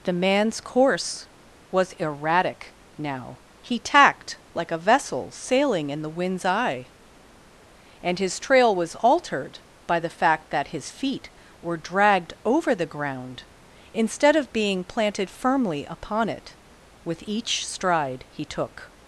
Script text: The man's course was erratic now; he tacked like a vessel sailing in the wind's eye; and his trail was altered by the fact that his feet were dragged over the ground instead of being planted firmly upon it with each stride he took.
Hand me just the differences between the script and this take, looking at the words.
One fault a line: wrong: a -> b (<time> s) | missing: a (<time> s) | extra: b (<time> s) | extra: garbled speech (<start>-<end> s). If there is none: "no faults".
no faults